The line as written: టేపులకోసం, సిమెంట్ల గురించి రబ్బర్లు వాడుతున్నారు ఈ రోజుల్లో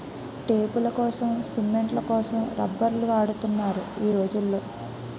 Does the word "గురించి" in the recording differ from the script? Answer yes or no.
yes